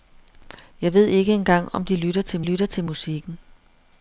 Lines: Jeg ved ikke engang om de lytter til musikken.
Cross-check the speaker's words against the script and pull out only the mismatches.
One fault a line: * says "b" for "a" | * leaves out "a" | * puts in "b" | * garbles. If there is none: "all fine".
* puts in "lytter til"